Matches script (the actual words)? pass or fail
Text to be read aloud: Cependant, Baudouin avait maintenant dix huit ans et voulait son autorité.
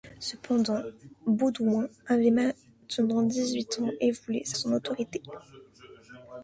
pass